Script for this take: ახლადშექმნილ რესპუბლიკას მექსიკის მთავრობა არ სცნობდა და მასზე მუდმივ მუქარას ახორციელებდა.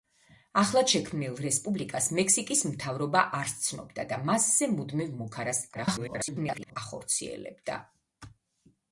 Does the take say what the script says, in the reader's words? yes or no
no